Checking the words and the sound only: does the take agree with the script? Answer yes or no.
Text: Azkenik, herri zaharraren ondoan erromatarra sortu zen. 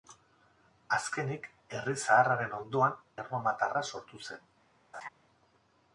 no